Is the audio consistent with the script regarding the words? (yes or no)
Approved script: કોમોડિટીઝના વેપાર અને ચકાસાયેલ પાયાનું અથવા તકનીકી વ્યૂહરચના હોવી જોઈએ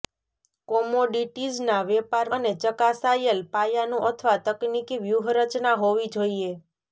yes